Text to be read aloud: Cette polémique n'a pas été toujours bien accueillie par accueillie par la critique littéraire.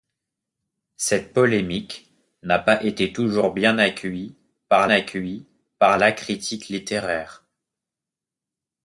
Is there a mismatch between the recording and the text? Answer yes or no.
no